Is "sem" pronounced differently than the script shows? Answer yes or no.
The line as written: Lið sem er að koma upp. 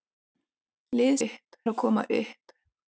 yes